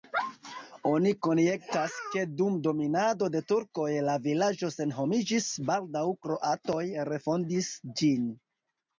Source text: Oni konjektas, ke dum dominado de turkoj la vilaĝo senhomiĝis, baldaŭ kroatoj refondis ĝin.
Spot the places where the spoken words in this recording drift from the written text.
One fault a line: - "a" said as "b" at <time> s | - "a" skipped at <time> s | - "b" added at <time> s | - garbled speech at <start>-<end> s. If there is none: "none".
none